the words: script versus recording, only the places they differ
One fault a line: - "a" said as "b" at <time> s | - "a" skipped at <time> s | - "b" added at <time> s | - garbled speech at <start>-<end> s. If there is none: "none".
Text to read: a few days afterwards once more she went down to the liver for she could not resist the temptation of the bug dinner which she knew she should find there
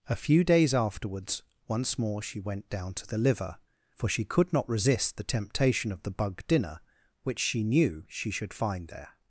none